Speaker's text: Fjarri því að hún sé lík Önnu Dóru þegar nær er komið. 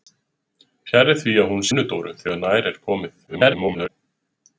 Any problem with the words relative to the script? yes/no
yes